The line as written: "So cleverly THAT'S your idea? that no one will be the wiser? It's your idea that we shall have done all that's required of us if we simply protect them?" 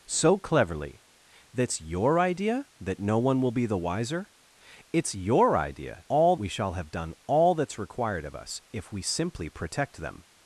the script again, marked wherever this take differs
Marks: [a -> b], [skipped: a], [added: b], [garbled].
"So cleverly THAT'S your idea? that no one will be the wiser? It's your idea [that -> all] we shall have done all that's required of us if we simply protect them?"